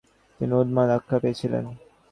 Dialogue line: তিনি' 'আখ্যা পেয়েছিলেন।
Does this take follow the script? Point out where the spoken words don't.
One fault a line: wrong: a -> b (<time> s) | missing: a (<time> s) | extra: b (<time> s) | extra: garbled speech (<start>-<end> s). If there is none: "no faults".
extra: উন্মাদ (0.6 s)